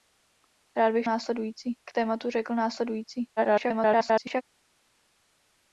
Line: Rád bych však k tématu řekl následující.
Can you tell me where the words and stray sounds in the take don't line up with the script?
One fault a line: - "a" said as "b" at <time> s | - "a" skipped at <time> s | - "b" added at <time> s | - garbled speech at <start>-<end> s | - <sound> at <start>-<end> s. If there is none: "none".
- "však" said as "následující" at 1.0 s
- garbled speech at 3.4-4.4 s